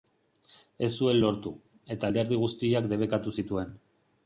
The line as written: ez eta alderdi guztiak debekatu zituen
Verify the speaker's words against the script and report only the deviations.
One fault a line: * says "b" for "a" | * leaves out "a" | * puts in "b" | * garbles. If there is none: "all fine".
* puts in "zuen lortu"